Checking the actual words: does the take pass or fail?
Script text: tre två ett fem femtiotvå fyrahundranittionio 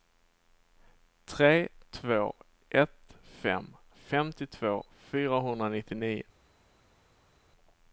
pass